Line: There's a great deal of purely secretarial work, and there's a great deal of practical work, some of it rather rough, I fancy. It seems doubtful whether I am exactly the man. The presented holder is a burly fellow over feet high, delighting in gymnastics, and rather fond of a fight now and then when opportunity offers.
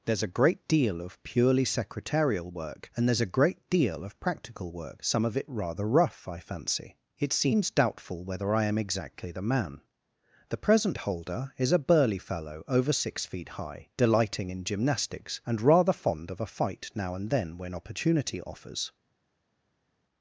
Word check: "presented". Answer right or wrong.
wrong